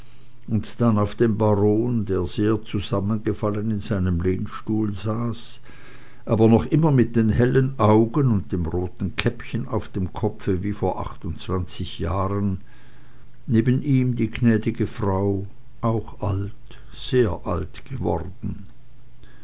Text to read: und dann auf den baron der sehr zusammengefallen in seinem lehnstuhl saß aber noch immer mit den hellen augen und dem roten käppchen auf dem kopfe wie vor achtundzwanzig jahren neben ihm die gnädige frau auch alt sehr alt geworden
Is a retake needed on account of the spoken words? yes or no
no